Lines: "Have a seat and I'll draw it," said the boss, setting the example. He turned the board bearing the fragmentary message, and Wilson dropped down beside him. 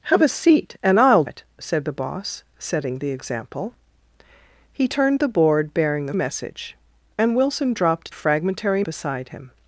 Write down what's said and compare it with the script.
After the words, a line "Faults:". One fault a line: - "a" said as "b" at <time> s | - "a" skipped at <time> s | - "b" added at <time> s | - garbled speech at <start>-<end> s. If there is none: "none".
"Have a seat and I'll it," said the boss, setting the example. He turned the board bearing the message, and Wilson dropped fragmentary beside him.
Faults:
- "draw" skipped at 1.2 s
- "fragmentary" skipped at 6.1 s
- "down" said as "fragmentary" at 8.1 s